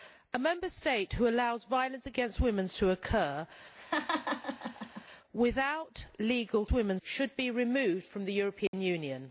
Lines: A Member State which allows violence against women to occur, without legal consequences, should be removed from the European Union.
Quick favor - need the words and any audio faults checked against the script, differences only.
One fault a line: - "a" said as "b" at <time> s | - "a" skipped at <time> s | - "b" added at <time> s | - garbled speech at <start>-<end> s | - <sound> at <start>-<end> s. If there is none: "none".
- laugh at 3.8-5.0 s
- "consequences" said as "women" at 6.7 s
- dropout at 8.7-8.7 s